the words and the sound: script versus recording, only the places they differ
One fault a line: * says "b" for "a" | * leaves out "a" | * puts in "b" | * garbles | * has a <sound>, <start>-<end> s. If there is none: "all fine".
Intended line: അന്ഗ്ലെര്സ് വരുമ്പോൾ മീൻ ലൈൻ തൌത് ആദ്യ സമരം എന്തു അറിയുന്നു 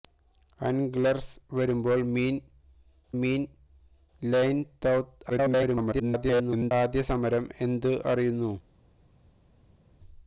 * puts in "മീൻ"
* garbles